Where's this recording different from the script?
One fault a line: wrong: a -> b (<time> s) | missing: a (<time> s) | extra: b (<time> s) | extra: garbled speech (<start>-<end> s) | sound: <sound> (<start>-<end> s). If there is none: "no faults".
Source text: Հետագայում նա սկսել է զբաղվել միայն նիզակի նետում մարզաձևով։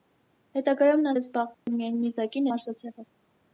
missing: սկսել (1.1 s)
sound: dropout (1.5-1.7 s)
missing: նետում (2.5 s)